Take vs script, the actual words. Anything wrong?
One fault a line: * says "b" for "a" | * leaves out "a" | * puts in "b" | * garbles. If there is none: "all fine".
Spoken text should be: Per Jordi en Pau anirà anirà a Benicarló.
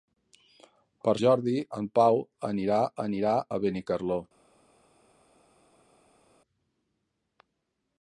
all fine